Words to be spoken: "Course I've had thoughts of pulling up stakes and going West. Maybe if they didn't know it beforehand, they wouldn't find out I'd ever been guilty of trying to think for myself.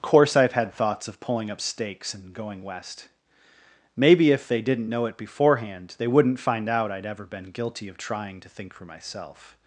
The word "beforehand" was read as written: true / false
true